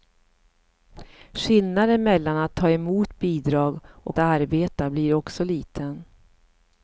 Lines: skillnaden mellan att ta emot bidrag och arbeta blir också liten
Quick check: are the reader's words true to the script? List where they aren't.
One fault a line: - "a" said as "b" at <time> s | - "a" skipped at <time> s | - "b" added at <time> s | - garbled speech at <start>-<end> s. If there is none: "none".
none